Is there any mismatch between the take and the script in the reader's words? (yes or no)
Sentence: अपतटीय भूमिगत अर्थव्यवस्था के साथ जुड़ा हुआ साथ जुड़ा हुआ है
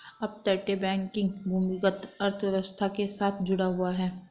yes